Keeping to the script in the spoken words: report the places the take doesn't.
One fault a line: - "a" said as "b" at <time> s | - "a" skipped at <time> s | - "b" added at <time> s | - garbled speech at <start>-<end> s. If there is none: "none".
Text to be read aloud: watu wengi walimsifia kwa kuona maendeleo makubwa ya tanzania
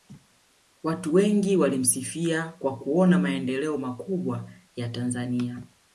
none